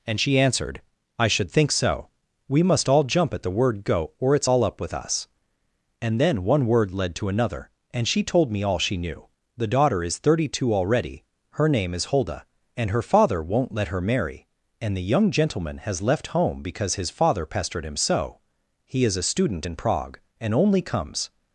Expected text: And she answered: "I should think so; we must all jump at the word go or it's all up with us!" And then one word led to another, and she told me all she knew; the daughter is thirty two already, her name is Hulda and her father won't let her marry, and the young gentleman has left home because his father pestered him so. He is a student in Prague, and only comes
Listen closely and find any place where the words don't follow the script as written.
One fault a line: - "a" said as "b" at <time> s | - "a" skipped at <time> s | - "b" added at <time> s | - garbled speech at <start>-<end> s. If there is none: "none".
none